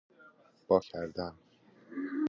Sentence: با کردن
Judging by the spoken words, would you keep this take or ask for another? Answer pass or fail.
pass